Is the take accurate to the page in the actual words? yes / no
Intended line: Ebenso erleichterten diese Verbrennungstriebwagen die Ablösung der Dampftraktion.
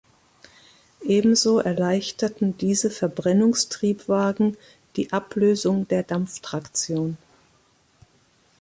yes